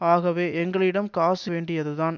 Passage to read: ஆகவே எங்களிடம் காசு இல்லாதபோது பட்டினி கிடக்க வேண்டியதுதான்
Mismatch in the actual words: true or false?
true